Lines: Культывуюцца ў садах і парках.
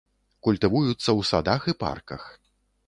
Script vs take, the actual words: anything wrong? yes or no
no